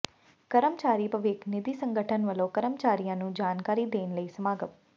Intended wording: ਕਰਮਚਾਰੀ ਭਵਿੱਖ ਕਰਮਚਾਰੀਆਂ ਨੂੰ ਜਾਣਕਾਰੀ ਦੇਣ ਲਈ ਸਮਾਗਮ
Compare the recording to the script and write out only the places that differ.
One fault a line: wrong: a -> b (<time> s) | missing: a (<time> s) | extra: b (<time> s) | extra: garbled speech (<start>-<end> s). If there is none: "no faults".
extra: ਨਿਧੀ ਸੰਗਠਨ ਵੱਲੋਂ (1.5 s)